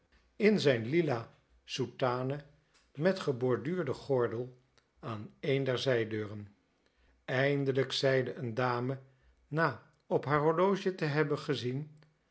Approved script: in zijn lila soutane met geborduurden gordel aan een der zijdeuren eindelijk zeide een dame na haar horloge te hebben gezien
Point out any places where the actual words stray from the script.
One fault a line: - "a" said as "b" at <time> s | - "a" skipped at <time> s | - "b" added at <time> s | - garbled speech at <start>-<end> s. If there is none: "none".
- "op" added at 10.1 s